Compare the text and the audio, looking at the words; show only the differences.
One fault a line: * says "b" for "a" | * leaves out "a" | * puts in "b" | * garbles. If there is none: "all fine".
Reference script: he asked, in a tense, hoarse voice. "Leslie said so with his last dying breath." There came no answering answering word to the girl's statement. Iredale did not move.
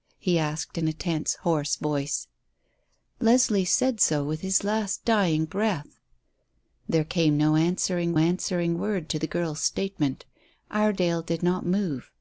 all fine